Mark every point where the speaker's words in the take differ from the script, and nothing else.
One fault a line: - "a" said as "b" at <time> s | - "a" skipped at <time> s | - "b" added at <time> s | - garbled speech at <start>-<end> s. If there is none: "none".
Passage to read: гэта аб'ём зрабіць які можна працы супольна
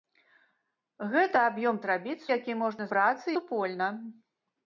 none